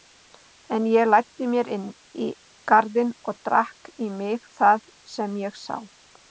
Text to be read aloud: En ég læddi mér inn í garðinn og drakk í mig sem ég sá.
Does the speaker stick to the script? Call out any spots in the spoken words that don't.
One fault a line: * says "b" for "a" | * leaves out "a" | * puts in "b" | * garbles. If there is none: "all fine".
* puts in "það"